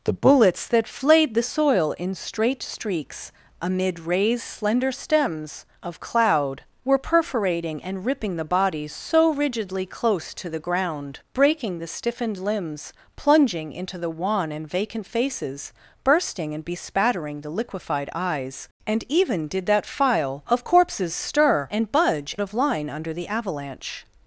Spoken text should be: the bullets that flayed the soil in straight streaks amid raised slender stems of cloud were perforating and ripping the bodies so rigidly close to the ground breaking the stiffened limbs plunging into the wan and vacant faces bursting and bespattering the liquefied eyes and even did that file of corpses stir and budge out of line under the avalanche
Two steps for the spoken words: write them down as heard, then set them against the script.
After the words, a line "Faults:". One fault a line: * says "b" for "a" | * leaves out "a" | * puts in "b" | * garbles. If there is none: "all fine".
the bullets that flayed the soil in straight streaks amid raised slender stems of cloud were perforating and ripping the bodies so rigidly close to the ground breaking the stiffened limbs plunging into the wan and vacant faces bursting and bespattering the liquefied eyes and even did that file of corpses stir and budge of line under the avalanche
Faults:
* leaves out "out"